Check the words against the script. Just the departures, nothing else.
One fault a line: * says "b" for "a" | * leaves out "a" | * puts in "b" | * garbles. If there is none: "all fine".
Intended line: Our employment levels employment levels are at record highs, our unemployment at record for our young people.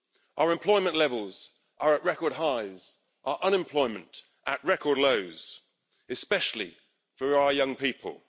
* leaves out "employment levels"
* puts in "lows especially"